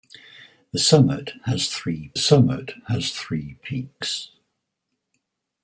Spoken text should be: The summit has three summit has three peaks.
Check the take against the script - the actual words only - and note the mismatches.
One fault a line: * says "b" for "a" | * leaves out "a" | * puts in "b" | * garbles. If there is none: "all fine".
all fine